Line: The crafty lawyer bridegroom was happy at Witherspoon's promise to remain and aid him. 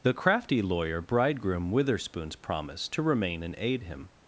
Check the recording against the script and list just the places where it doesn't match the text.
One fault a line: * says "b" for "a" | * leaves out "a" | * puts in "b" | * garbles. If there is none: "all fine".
* leaves out "was happy at"